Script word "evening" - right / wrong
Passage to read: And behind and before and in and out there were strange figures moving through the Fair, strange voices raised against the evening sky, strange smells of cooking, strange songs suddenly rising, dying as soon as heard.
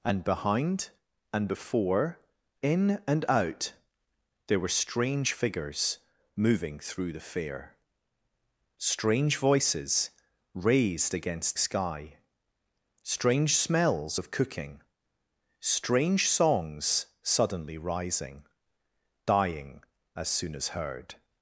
wrong